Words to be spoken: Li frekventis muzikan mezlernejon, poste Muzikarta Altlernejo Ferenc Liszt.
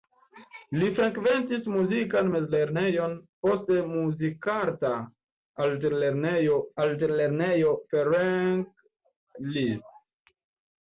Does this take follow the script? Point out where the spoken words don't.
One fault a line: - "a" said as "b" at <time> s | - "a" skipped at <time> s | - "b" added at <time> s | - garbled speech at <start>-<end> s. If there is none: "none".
- "Altlernejo" added at 6.8 s